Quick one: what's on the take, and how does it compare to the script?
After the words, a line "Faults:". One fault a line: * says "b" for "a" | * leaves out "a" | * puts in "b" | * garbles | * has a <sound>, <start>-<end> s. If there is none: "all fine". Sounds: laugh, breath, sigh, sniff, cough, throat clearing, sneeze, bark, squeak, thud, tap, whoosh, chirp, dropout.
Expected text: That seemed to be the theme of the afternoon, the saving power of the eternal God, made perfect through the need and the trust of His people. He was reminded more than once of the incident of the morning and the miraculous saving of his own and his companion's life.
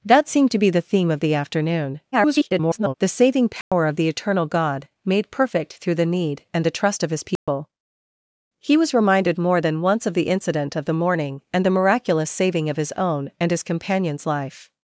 That seemed to be the theme of the afternoon, [garbled] the saving power of the eternal God, made perfect through the need and the trust of His people. He was reminded more than once of the incident of the morning and the miraculous saving of his own and his companion's life.
Faults:
* garbles
* has a dropout, 3.6-3.7 s
* has a dropout, 7.4-7.5 s